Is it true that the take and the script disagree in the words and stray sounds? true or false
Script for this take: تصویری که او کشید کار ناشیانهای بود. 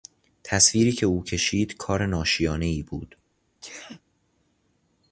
true